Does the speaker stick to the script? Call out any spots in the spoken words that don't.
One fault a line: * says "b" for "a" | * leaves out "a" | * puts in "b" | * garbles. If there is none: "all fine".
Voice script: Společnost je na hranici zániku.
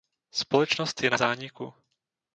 * leaves out "hranici"